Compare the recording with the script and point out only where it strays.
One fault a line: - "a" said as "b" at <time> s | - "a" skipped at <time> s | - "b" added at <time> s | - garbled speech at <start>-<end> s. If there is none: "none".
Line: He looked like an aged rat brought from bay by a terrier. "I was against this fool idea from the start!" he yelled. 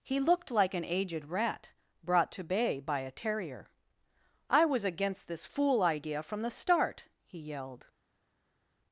- "from" said as "to" at 2.3 s